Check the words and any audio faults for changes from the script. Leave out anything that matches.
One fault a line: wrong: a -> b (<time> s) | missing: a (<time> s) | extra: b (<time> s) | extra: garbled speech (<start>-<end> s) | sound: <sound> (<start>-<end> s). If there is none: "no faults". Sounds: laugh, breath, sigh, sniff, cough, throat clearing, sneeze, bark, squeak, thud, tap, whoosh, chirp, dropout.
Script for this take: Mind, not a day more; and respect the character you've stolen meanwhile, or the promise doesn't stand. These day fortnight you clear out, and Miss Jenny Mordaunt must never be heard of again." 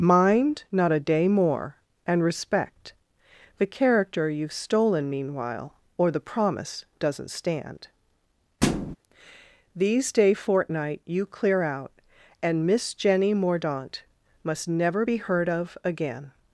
sound: thud (8.6-9.0 s)